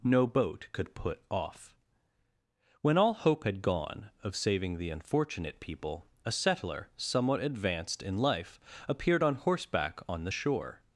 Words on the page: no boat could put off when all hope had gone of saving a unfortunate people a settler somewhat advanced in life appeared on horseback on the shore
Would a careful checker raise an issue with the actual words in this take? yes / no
yes